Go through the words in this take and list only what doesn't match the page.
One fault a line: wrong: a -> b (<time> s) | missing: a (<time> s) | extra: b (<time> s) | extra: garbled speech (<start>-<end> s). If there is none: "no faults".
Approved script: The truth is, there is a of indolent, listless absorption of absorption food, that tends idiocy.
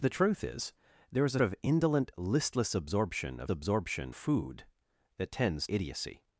no faults